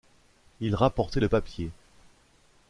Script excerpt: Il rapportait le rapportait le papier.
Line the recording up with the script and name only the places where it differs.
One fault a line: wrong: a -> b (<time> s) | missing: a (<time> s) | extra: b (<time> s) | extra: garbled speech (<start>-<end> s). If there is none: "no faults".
missing: rapportait le (1.3 s)